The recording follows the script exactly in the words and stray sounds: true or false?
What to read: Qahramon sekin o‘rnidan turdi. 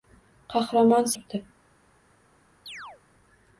false